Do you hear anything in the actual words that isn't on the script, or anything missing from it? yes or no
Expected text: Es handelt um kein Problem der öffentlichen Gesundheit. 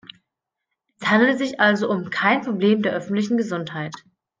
yes